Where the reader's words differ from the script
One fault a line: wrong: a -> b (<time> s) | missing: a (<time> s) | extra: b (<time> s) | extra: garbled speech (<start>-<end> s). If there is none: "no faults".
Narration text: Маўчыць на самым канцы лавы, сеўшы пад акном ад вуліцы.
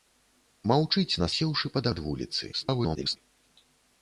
missing: самым канцы лавы (1.3 s)
missing: акном (1.8 s)
extra: garbled speech (2.5-3.2 s)